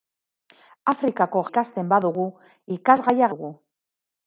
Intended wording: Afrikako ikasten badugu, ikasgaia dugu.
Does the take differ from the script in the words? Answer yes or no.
no